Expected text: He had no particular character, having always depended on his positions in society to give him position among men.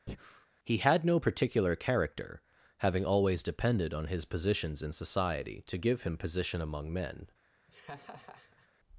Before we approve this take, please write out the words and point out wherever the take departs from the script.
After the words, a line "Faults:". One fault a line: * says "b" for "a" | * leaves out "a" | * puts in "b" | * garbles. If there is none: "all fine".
He had no particular character, having always depended on his positions in society to give him position among men.
Faults:
all fine